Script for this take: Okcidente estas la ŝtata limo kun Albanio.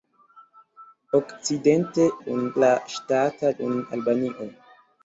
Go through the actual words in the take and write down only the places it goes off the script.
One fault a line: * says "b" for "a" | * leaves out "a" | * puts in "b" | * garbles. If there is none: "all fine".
* says "kun" for "estas"
* leaves out "limo"